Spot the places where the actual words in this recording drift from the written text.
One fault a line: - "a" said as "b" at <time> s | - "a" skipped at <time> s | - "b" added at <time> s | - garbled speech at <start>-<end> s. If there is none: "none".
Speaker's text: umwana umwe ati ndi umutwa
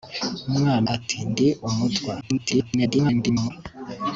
- "umwe" skipped at 0.9 s
- garbled speech at 2.2-3.5 s